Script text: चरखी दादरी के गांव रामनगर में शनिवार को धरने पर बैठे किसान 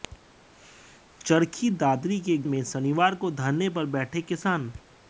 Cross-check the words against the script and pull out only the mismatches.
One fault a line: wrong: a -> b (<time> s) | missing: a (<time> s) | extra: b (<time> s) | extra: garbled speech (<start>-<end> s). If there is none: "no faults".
missing: गांव रामनगर (2.4 s)